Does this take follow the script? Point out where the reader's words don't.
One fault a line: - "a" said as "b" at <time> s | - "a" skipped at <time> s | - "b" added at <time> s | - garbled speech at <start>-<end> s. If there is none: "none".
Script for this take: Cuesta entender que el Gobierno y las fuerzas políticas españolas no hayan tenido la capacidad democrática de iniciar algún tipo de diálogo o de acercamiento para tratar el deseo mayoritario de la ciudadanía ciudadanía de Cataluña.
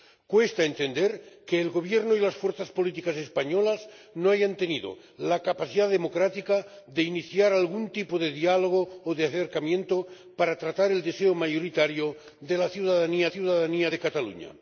none